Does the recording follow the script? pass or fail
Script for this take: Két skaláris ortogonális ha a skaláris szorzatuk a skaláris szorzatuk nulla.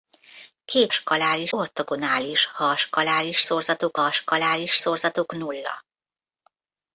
pass